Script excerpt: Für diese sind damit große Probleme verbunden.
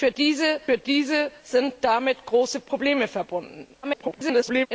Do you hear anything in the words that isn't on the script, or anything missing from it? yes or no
yes